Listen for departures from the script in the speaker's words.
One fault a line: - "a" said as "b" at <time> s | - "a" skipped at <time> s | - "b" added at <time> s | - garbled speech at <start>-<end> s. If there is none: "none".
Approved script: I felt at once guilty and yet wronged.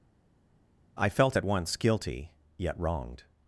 - "and" skipped at 2.3 s